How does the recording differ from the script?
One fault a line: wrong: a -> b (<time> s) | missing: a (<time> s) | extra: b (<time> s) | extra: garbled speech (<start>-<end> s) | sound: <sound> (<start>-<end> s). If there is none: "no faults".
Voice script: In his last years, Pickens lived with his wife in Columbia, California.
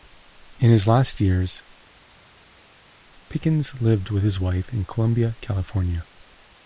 no faults